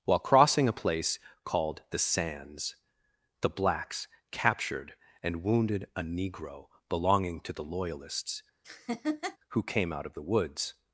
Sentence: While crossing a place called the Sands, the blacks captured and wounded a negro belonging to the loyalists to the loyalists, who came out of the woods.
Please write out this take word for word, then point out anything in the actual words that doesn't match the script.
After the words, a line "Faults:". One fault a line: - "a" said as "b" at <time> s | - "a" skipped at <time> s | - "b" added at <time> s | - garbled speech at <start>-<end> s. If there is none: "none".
While crossing a place called the Sands, the blacks captured and wounded a negro belonging to the loyalists, who came out of the woods.
Faults:
- "to the loyalists" skipped at 8.4 s